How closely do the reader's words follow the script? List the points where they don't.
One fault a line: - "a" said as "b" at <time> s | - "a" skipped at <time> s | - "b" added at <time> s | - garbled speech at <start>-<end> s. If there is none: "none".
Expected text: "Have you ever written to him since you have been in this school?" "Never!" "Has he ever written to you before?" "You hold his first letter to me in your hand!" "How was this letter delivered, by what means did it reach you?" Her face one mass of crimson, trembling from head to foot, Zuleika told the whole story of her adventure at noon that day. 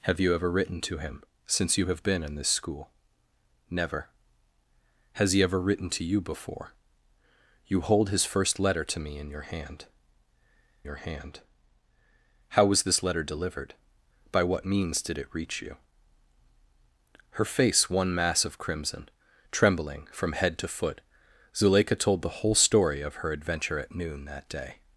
- "your hand" added at 10.8 s